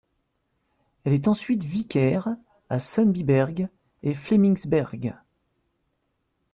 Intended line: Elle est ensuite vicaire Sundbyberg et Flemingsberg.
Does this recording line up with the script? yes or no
no